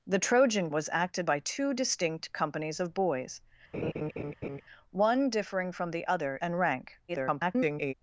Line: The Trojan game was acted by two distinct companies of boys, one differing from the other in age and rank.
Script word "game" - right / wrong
wrong